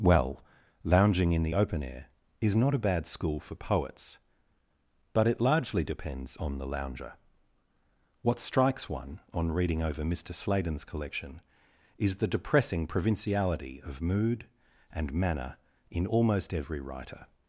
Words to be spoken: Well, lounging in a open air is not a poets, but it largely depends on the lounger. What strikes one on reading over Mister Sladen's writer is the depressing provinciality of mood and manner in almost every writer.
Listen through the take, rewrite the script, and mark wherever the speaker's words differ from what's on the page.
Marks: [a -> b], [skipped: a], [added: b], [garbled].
Well, lounging in [a -> the] open air is not a [added: bad school for] poets, but it largely depends on the lounger. What strikes one on reading over Mister Sladen's [writer -> collection] is the depressing provinciality of mood and manner in almost every writer.